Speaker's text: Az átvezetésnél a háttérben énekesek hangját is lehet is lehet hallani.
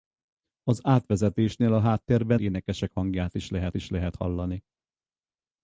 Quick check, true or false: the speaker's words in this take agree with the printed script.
true